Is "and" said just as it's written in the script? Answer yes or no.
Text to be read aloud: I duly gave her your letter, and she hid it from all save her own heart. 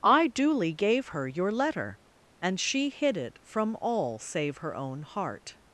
yes